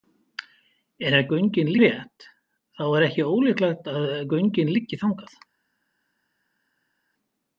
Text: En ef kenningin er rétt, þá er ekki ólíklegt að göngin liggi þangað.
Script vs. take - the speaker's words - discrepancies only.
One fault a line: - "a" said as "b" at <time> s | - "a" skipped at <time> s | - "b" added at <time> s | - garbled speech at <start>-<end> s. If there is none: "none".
- "kenningin" said as "göngin" at 1.3 s